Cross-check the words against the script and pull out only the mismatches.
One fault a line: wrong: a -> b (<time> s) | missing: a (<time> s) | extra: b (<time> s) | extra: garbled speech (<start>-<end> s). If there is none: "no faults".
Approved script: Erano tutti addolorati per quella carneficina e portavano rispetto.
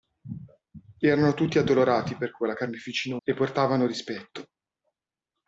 no faults